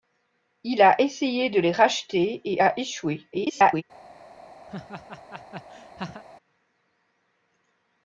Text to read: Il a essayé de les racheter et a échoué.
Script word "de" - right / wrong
right